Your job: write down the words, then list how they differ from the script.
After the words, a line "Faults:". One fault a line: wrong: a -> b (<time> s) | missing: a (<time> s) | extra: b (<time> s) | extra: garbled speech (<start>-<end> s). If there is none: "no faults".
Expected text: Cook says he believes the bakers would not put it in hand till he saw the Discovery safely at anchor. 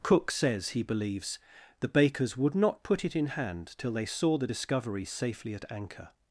Cook says he believes the bakers would not put it in hand till they saw the Discovery safely at anchor.
Faults:
wrong: he -> they (3.9 s)